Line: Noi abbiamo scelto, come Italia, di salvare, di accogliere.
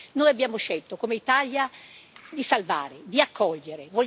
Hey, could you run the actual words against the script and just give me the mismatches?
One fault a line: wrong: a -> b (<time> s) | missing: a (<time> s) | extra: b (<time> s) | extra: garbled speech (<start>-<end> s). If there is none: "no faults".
no faults